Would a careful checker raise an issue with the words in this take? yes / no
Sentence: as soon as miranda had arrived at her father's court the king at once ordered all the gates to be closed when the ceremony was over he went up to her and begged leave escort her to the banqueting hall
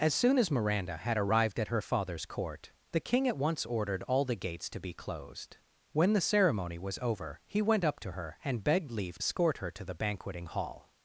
no